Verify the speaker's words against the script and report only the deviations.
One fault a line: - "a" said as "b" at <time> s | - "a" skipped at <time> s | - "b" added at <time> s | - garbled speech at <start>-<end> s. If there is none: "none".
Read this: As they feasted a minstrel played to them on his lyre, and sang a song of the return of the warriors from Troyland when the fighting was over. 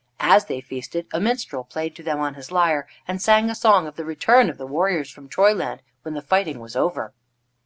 none